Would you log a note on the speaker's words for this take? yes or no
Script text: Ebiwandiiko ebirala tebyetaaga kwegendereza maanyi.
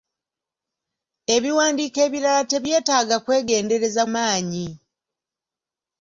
no